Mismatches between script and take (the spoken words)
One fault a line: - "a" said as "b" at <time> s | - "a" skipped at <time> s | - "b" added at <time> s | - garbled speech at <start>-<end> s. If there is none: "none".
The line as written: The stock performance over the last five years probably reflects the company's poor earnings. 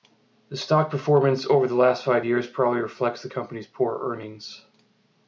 none